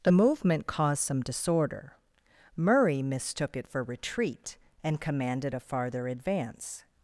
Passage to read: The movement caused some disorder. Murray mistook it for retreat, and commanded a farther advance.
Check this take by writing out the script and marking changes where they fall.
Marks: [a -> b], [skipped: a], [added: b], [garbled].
The movement caused some disorder. Murray mistook it for retreat, and commanded a farther advance.